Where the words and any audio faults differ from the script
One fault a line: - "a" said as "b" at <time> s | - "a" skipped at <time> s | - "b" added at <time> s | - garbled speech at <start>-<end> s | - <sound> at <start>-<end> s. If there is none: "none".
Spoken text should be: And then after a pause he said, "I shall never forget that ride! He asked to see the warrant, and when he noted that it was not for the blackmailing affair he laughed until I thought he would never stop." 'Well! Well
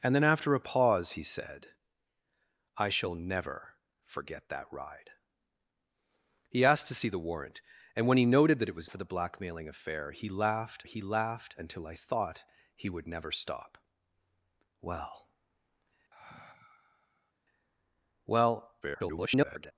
- "not" skipped at 8.9 s
- "he laughed" added at 10.8 s
- sigh at 16.1-17.3 s
- garbled speech at 18.8-19.7 s